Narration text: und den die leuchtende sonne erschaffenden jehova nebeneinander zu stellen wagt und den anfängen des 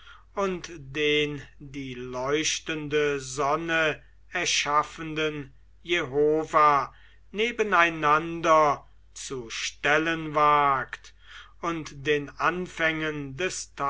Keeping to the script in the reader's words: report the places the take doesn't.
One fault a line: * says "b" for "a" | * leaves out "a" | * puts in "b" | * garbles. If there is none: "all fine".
all fine